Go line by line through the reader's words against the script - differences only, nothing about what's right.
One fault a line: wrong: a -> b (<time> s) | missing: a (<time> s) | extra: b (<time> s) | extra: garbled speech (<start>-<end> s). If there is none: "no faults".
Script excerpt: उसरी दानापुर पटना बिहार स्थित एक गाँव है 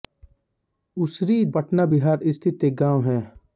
missing: दानापुर (1.4 s)